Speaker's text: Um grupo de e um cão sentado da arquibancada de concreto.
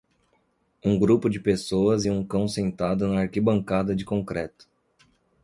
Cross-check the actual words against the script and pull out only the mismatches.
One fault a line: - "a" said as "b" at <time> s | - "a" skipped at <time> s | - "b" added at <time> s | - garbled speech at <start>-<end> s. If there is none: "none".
- "pessoas" added at 1.4 s
- "da" said as "na" at 3.1 s